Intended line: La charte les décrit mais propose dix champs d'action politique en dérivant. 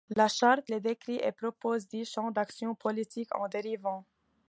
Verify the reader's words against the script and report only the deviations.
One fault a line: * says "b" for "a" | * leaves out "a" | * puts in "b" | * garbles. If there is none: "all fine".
* says "et" for "mais"